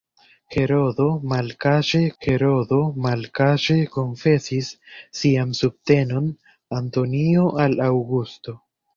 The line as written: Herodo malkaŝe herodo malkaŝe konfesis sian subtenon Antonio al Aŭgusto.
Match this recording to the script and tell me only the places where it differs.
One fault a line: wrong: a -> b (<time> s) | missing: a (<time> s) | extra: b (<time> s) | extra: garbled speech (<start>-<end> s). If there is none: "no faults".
no faults